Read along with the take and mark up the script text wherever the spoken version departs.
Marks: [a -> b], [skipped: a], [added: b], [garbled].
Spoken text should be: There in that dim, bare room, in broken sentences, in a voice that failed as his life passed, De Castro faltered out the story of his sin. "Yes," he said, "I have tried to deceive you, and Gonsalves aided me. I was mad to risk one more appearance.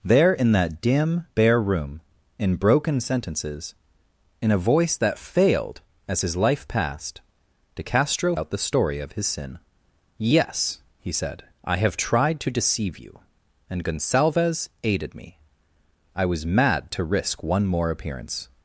There in that dim, bare room, in broken sentences, in a voice that failed as his life passed, De Castro [skipped: faltered] out the story of his sin. "Yes," he said, "I have tried to deceive you, and Gonsalves aided me. I was mad to risk one more appearance.